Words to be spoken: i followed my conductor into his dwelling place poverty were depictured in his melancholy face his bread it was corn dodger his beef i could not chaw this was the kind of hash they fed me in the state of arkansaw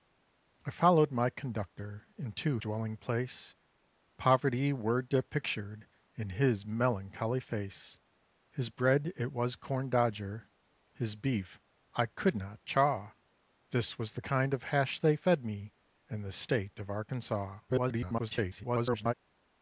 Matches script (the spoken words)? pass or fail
fail